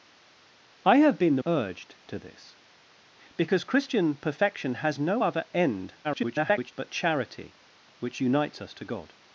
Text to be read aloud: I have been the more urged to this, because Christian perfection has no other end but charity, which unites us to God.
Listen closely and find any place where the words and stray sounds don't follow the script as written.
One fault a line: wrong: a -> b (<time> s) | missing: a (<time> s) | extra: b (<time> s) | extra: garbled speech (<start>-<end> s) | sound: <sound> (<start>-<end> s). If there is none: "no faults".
missing: more (1.4 s)
extra: garbled speech (6.0-6.7 s)